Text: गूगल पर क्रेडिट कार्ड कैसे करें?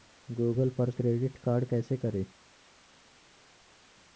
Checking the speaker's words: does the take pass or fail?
pass